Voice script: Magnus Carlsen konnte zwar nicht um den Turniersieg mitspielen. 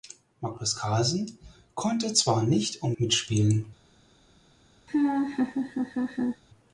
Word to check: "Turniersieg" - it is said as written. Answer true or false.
false